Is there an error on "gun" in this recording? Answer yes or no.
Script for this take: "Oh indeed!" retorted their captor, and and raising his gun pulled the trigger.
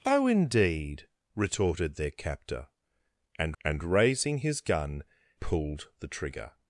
no